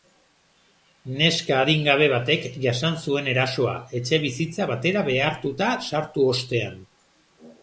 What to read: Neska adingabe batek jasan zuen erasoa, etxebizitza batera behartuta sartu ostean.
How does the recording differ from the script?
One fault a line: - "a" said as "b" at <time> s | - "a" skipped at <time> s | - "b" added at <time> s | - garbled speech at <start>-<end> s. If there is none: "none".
none